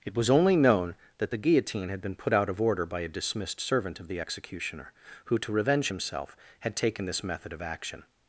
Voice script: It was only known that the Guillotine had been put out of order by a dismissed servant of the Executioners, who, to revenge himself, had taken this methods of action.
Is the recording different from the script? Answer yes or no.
yes